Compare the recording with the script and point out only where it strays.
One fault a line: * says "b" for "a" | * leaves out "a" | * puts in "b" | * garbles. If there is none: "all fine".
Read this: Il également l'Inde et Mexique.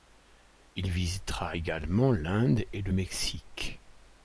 * puts in "visitera"
* puts in "le"